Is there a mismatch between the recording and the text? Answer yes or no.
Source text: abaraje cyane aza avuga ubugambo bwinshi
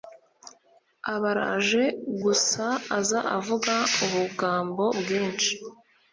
yes